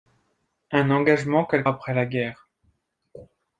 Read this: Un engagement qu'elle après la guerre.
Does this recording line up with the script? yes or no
yes